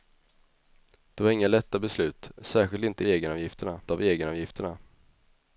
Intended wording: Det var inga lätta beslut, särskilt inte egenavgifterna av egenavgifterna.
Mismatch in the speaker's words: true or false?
false